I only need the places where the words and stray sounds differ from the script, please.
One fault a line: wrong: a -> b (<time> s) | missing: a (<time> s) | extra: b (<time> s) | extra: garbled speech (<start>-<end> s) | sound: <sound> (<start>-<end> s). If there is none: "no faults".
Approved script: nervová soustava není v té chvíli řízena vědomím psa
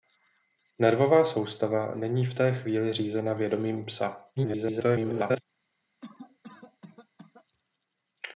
extra: garbled speech (4.4-5.4 s)
sound: cough (6.0-7.5 s)